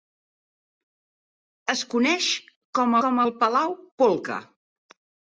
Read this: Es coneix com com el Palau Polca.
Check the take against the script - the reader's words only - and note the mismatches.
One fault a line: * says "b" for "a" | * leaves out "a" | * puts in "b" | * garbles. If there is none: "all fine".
all fine